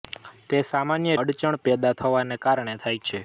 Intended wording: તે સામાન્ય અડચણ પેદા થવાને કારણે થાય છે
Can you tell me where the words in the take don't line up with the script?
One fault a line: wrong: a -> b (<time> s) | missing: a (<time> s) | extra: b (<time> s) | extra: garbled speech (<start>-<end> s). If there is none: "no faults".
no faults